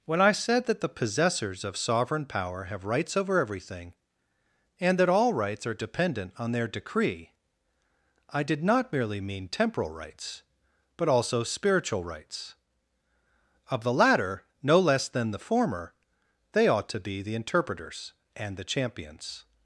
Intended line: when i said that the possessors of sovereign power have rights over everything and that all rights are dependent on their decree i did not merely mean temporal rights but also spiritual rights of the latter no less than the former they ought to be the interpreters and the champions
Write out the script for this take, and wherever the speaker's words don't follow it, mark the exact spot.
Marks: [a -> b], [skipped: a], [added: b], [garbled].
when i said that the possessors of sovereign power have rights over everything and that all rights are dependent on their decree i did not merely mean temporal rights but also spiritual rights of the latter no less than the former they ought to be the interpreters and the champions